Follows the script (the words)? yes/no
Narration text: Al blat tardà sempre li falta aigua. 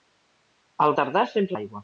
no